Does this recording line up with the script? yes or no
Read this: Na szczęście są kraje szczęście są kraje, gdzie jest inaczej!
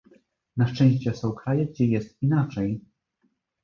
no